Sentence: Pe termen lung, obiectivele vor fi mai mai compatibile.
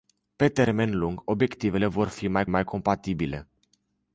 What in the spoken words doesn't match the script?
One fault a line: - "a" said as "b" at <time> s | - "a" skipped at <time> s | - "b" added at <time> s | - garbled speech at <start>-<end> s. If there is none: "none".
none